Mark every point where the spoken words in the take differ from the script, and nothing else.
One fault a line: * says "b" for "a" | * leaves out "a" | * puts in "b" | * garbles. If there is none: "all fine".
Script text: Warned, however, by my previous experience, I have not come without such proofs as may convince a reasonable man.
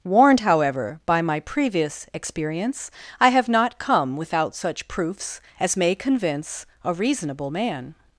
all fine